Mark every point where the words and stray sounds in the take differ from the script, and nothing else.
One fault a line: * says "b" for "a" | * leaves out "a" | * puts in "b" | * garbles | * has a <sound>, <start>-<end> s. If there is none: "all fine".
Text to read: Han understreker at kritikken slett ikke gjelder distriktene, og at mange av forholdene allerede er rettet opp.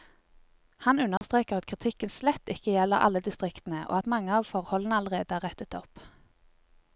* has a dropout, 1.2-1.2 s
* puts in "alle"